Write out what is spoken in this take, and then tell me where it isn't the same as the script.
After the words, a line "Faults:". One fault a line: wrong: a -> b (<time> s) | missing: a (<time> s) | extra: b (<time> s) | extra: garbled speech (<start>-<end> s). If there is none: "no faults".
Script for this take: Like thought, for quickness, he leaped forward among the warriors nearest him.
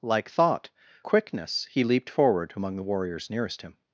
Like thought, quickness, he leaped forward among the warriors nearest him.
Faults:
missing: for (0.7 s)